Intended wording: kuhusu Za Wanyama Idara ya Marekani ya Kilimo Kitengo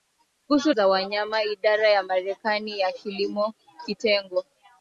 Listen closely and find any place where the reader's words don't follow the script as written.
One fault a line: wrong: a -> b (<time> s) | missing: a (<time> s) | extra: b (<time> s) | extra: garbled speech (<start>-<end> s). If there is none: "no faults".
no faults